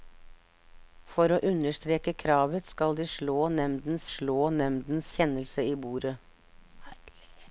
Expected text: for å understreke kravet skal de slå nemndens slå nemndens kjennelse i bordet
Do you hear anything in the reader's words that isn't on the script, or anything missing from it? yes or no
no